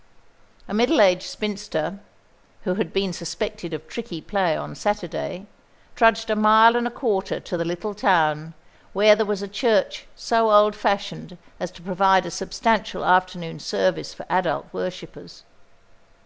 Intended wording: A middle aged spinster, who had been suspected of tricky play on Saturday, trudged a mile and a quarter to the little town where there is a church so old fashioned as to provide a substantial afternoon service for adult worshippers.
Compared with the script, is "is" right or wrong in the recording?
wrong